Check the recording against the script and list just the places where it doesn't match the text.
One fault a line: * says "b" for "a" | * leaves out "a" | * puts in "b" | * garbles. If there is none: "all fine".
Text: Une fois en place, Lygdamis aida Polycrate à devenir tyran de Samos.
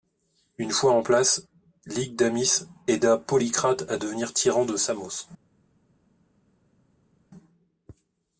all fine